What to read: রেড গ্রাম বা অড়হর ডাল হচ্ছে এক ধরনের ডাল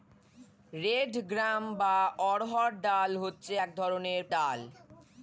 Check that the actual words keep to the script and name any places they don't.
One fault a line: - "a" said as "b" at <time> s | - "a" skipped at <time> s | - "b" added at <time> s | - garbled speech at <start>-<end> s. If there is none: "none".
none